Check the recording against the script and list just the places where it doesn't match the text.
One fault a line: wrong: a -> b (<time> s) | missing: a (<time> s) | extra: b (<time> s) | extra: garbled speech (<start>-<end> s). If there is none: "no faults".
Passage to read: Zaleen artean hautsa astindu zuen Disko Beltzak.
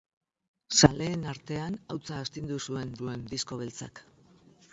extra: zuen (3.0 s)